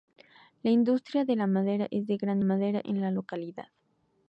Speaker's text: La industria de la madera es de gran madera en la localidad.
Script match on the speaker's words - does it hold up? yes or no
yes